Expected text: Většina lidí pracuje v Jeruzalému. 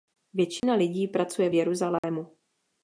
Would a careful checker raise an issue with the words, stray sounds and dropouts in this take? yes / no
yes